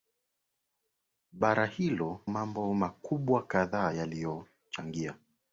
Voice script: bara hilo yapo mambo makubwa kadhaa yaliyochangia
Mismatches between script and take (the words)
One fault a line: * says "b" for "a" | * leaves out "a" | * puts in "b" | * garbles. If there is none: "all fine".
* leaves out "yapo"